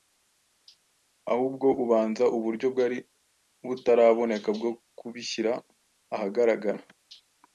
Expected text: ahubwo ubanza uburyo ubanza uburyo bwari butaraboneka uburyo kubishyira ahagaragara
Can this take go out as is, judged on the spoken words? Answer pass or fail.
fail